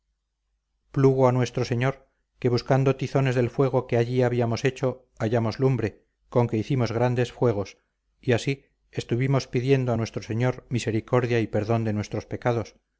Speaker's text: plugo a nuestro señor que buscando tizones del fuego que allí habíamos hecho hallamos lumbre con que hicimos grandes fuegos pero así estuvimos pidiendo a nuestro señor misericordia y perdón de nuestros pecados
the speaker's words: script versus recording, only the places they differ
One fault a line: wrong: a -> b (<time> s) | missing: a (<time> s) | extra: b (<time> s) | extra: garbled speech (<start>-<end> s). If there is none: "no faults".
wrong: pero -> y (8.2 s)